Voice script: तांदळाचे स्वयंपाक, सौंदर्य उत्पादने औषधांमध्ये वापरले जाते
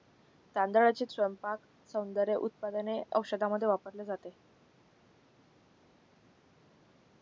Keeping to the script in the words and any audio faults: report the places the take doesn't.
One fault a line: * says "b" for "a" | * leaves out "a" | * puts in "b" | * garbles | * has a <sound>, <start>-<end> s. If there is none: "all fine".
all fine